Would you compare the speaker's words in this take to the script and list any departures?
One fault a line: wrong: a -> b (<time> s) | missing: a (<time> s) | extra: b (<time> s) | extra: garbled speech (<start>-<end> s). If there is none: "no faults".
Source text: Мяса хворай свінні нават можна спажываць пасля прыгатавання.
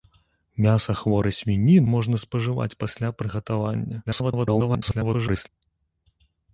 missing: нават (1.8 s)
extra: garbled speech (4.1-5.5 s)